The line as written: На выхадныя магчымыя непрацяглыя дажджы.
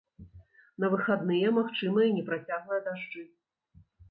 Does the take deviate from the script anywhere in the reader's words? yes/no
no